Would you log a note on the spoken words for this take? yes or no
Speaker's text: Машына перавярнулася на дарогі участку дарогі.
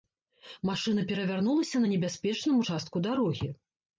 yes